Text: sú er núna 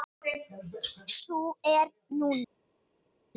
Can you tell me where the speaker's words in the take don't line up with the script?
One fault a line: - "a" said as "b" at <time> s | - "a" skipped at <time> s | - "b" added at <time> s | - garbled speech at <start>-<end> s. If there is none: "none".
none